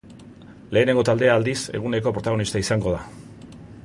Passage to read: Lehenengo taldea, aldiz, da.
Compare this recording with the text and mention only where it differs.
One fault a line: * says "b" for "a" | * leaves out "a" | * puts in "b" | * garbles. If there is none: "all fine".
* puts in "eguneko protagonista izango"